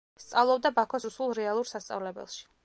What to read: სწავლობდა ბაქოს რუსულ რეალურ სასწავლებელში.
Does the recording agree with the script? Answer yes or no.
yes